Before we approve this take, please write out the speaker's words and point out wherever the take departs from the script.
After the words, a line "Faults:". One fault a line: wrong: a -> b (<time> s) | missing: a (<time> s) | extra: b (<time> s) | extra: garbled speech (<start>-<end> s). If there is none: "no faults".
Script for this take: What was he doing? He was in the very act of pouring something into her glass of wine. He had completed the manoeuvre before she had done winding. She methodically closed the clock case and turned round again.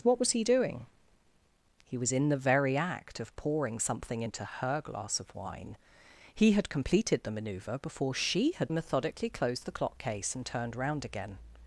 What was he doing? He was in the very act of pouring something into her glass of wine. He had completed the manoeuvre before she had methodically closed the clock case and turned round again.
Faults:
missing: done winding She (8.7 s)